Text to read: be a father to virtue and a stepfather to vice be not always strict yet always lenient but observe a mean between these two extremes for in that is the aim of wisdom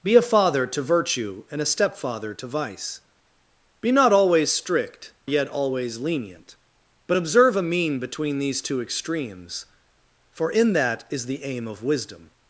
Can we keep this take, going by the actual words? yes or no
yes